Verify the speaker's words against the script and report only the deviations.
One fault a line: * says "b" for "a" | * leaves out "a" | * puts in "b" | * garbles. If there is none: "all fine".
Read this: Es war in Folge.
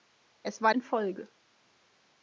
all fine